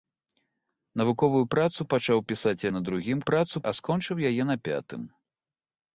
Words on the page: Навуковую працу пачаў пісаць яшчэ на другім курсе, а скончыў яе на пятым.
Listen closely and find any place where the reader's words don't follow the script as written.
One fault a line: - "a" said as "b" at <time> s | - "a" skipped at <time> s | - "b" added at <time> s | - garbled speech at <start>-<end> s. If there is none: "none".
- "яшчэ" skipped at 2.6 s
- "курсе" said as "працу" at 3.3 s